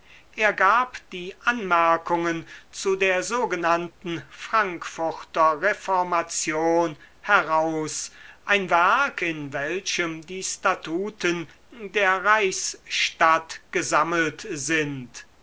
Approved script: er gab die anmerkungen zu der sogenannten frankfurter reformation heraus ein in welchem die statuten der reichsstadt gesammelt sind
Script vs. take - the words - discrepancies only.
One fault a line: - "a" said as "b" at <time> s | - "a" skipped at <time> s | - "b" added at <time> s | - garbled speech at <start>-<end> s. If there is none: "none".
- "werk" added at 8.7 s